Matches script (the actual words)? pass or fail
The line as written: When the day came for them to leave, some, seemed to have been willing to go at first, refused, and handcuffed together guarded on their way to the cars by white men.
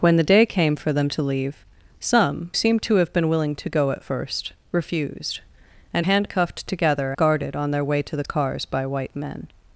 pass